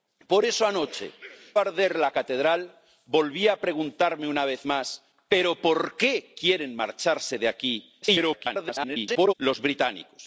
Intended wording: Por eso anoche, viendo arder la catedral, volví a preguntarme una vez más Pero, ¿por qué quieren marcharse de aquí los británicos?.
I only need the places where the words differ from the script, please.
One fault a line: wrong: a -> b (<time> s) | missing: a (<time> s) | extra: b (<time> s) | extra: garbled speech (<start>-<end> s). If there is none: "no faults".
missing: viendo (1.1 s)
extra: garbled speech (8.0-9.3 s)